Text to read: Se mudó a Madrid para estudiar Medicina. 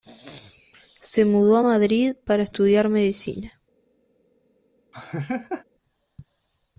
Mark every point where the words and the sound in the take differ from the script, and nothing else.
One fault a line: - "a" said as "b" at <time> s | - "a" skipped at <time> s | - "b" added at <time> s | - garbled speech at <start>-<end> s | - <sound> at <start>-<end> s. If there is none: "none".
- laugh at 4.9-5.6 s